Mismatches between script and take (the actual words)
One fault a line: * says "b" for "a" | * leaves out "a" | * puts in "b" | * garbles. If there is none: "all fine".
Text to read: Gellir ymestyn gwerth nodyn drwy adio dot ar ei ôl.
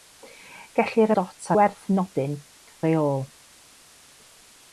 * says "dot" for "ymestyn"
* leaves out "drwy adio dot"